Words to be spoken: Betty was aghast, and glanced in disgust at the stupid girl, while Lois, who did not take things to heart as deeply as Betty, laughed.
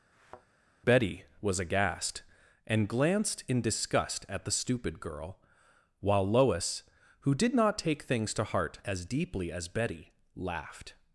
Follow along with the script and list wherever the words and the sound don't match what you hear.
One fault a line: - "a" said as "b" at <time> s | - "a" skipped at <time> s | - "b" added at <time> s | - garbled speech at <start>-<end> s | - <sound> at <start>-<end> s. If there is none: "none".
- thud at 0.1-0.5 s